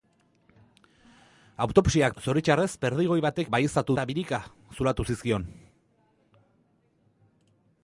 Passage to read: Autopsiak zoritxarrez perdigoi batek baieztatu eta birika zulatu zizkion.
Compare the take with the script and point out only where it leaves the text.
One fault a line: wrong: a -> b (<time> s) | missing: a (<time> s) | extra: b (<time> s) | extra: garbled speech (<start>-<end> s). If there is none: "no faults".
no faults